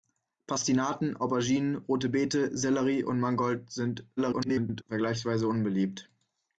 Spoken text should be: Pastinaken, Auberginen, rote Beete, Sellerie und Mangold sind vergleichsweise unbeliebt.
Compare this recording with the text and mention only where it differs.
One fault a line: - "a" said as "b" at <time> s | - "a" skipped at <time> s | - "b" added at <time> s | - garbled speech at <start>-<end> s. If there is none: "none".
- garbled speech at 4.2-4.8 s